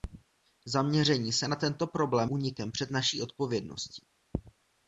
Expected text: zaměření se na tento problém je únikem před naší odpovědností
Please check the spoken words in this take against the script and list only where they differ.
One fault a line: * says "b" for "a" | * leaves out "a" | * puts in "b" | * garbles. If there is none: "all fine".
* leaves out "je"